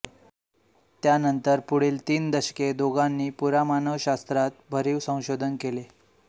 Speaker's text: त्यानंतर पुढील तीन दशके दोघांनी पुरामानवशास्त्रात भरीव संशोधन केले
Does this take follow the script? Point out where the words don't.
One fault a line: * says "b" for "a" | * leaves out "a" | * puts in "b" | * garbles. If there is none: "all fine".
all fine